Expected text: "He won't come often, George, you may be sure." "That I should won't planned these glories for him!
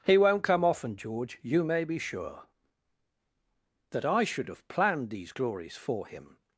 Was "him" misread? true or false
false